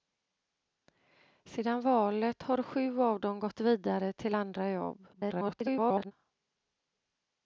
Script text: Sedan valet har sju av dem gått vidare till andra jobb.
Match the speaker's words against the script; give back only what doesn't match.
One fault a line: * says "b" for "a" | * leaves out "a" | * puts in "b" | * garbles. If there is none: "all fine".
* garbles